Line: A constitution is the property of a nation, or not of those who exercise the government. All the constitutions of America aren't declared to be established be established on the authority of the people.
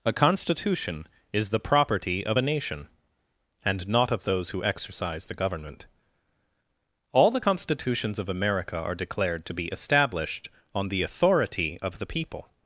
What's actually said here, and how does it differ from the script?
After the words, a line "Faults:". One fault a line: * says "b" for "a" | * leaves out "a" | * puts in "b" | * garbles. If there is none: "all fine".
A constitution is the property of a nation, and not of those who exercise the government. All the constitutions of America are declared to be established on the authority of the people.
Faults:
* says "and" for "or"
* says "are" for "aren't"
* leaves out "be established"